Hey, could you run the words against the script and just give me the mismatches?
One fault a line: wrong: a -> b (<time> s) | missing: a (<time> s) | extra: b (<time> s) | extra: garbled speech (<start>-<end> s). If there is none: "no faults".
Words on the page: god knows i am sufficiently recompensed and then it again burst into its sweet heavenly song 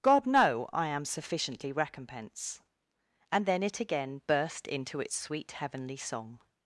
wrong: knows -> know (0.2 s)
wrong: recompensed -> recompense (1.7 s)